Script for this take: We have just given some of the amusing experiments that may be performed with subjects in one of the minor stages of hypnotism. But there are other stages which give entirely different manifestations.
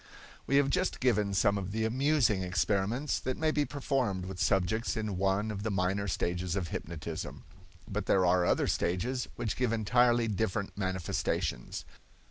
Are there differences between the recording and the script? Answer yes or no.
no